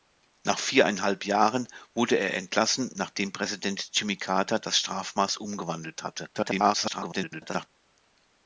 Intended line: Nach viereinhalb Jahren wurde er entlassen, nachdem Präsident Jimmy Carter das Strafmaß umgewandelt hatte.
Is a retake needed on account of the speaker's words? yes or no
yes